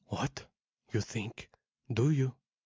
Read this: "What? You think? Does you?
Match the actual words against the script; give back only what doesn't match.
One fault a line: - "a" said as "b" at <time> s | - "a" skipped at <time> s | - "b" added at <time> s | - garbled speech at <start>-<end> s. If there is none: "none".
- "Does" said as "Do" at 1.9 s